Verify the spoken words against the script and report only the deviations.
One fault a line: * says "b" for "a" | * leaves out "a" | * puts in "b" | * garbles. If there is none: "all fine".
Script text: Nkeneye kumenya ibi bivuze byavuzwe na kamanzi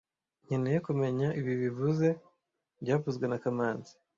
all fine